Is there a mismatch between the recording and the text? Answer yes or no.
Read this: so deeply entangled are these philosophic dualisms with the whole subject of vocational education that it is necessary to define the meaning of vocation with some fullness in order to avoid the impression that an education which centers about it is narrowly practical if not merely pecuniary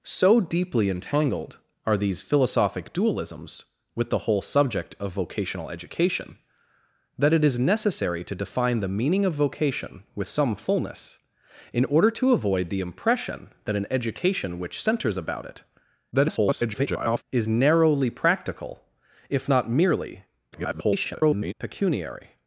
yes